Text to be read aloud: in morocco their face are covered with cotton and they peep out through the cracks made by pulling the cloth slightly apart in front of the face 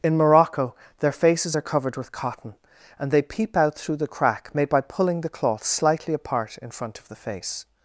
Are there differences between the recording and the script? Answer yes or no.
yes